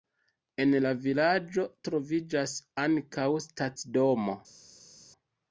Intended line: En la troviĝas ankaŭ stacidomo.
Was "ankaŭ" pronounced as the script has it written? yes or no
yes